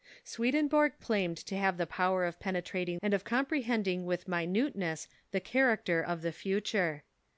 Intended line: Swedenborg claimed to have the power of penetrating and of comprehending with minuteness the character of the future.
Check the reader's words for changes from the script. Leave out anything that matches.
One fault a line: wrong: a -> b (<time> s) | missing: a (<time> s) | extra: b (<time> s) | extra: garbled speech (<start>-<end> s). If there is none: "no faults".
no faults